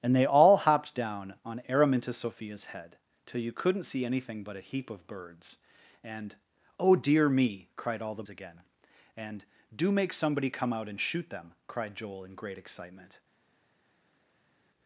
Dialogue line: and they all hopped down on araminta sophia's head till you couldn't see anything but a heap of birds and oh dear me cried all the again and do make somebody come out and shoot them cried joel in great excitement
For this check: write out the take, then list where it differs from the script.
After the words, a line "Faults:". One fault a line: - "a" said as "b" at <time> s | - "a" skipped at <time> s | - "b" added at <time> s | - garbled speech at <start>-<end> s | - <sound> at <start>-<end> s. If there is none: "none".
and they all hopped down on araminta sophia's head till you couldn't see anything but a heap of birds and oh dear me cried all the again and do make somebody come out and shoot them cried joel in great excitement
Faults:
none